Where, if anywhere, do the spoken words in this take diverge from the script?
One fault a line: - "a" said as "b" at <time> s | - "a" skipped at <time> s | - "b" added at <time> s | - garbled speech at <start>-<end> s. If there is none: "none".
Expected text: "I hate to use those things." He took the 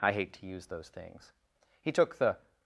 none